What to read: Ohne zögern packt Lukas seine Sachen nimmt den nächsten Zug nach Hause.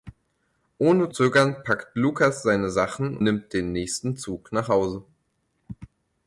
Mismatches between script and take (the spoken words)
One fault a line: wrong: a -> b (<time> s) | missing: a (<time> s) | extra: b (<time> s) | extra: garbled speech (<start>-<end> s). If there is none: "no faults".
no faults